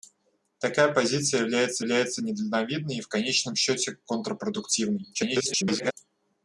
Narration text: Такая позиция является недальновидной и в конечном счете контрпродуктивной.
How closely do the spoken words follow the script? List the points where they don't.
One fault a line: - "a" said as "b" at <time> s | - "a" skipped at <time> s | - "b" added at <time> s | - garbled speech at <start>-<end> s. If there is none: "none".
- "является" added at 1.8 s
- garbled speech at 5.1-5.9 s